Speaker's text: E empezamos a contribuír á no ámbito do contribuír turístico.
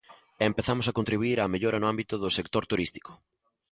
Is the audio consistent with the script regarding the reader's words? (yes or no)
no